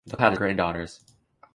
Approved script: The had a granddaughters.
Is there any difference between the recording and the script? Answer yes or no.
no